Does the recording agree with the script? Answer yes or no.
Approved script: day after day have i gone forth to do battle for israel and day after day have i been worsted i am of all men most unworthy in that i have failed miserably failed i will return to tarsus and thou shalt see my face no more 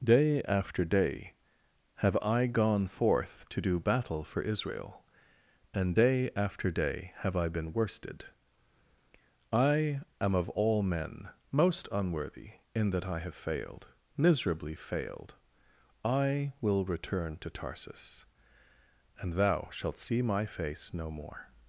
yes